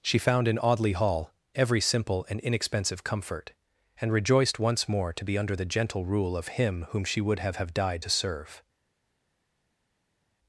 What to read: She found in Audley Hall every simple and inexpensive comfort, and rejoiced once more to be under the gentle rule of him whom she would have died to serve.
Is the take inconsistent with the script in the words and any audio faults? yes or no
yes